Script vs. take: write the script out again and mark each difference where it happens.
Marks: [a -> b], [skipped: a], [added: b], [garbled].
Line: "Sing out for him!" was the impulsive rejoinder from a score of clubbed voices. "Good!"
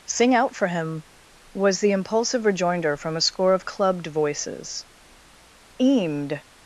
"Sing out for him!" was the impulsive rejoinder from a score of clubbed voices. ["Good!" -> Eamed]